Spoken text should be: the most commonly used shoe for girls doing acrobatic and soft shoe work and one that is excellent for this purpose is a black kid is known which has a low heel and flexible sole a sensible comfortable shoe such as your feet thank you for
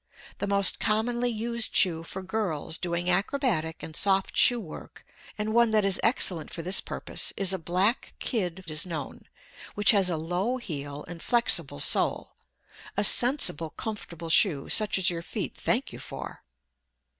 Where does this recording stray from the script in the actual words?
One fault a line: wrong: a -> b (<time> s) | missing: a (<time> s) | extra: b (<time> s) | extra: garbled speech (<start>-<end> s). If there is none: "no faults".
no faults